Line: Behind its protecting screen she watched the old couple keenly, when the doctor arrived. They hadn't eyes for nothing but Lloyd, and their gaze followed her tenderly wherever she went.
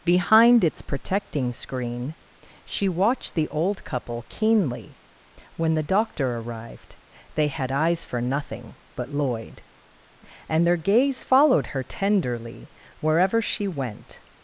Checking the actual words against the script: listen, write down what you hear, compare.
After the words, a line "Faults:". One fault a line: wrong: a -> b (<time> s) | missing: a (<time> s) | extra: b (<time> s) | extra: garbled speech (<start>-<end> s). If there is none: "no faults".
Behind its protecting screen she watched the old couple keenly, when the doctor arrived. They had eyes for nothing but Lloyd, and their gaze followed her tenderly wherever she went.
Faults:
wrong: hadn't -> had (7.5 s)